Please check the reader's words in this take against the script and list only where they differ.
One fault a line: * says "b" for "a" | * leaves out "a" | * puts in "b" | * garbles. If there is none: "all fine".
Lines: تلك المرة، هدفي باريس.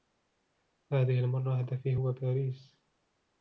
* says "هذه" for "تلك"
* puts in "هو"